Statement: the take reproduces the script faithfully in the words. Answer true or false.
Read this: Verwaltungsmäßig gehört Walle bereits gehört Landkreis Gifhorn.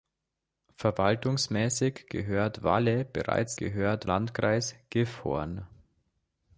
true